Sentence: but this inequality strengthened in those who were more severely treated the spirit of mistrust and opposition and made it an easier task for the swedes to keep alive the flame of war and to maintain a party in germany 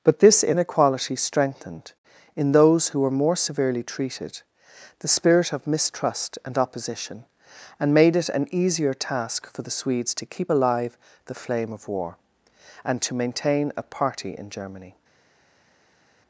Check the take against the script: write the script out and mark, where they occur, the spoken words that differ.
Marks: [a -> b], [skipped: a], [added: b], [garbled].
but this inequality strengthened in those who were more severely treated the spirit of mistrust and opposition and made it an easier task for the swedes to keep alive the flame of war and to maintain a party in germany